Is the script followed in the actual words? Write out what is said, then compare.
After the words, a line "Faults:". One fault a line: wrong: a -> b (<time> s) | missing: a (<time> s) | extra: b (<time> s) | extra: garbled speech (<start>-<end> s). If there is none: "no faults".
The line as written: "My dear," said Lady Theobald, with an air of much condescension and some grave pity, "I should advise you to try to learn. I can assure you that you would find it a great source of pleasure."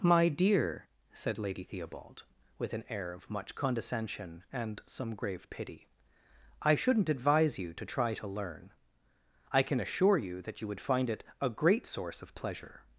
"My dear," said Lady Theobald, with an air of much condescension and some grave pity, "I shouldn't advise you to try to learn. I can assure you that you would find it a great source of pleasure."
Faults:
wrong: should -> shouldn't (6.7 s)